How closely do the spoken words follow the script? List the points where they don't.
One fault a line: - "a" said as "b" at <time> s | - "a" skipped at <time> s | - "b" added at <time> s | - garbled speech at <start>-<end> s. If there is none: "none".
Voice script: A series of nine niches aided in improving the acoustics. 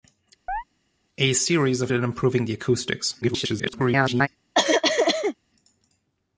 - "nine niches aided" skipped at 1.9 s
- garbled speech at 3.2-4.3 s